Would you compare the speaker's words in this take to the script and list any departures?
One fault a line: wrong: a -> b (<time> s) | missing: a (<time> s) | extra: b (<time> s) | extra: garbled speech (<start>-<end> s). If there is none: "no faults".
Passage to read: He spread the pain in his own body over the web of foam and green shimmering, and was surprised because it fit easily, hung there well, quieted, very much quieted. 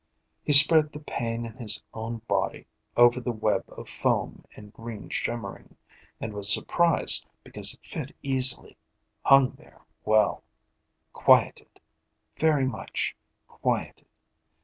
no faults